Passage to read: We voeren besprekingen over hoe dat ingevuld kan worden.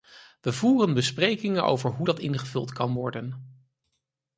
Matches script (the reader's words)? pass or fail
pass